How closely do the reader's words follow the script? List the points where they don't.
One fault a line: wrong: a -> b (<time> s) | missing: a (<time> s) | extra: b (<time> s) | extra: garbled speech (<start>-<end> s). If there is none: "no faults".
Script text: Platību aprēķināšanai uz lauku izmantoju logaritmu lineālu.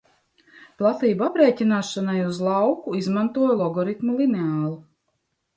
no faults